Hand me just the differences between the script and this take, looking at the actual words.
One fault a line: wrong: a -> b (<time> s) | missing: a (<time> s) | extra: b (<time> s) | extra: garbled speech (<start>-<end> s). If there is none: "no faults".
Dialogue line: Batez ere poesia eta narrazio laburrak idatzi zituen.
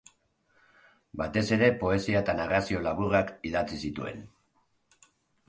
no faults